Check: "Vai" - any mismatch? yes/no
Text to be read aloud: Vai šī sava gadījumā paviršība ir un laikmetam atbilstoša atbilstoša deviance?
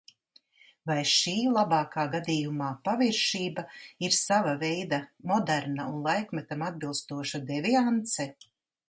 no